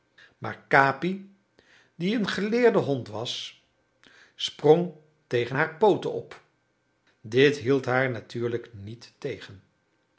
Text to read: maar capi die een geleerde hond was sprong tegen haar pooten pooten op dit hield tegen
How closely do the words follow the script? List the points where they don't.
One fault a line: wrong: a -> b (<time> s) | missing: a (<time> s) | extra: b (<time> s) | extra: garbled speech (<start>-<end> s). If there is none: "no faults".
missing: pooten (6.1 s)
extra: haar natuurlijk niet (7.8 s)